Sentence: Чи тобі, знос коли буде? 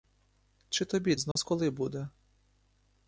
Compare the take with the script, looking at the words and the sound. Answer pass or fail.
fail